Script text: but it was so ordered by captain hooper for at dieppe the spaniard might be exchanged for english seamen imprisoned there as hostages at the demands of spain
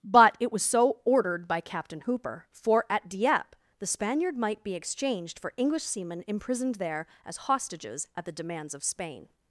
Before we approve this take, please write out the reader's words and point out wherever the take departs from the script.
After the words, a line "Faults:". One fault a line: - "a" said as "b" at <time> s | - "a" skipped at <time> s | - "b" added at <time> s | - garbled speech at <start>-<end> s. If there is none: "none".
but it was so ordered by captain hooper for at dieppe the spaniard might be exchanged for english seamen imprisoned there as hostages at the demands of spain
Faults:
none